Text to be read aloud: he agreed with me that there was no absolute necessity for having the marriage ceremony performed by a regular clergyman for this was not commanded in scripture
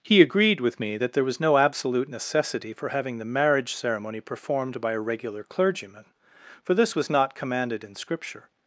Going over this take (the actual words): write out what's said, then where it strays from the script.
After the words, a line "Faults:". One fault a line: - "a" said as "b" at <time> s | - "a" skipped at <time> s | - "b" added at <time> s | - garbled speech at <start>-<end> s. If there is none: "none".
he agreed with me that there was no absolute necessity for having the marriage ceremony performed by a regular clergyman for this was not commanded in scripture
Faults:
none